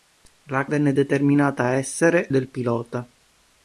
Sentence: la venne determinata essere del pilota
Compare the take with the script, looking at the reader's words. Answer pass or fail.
pass